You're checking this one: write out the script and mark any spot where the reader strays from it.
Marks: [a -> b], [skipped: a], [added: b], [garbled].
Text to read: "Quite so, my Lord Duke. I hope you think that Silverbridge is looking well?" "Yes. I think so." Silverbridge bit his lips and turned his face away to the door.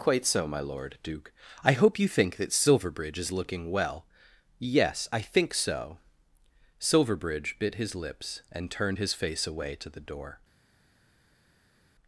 "Quite so, my Lord Duke. I hope you think that Silverbridge is looking well?" "Yes. I think so." Silverbridge bit his lips and turned his face away to the door.